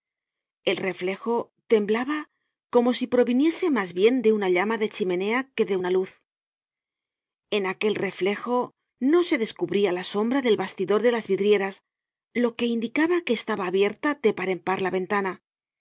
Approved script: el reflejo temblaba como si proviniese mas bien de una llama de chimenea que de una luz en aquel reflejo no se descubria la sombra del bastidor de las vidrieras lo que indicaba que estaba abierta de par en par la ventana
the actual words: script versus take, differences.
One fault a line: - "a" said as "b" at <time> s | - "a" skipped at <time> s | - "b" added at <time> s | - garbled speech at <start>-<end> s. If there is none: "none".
none